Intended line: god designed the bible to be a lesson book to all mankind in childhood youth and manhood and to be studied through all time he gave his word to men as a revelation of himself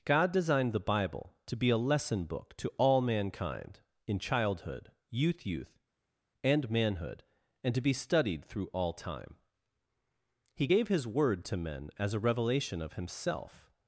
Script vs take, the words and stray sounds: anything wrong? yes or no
yes